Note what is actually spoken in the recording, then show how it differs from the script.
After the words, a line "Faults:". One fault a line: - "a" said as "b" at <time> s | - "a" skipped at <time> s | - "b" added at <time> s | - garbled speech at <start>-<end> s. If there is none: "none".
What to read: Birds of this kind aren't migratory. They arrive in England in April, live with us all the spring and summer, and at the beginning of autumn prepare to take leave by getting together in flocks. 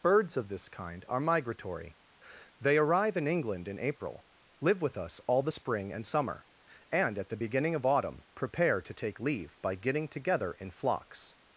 Birds of this kind are migratory. They arrive in England in April, live with us all the spring and summer, and at the beginning of autumn prepare to take leave by getting together in flocks.
Faults:
- "aren't" said as "are" at 1.1 s